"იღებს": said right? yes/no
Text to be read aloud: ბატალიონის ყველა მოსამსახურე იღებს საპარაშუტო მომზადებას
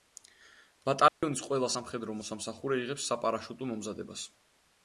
yes